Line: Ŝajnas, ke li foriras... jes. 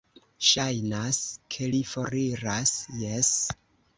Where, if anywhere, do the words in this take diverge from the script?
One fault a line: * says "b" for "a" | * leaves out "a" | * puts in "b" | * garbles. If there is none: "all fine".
all fine